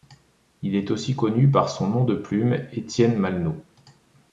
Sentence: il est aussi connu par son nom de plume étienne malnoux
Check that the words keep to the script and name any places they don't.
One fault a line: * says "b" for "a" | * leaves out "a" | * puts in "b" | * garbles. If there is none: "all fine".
all fine